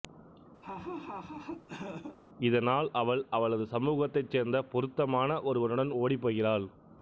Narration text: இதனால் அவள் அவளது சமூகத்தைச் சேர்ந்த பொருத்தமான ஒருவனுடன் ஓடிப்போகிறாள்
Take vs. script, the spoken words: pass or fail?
pass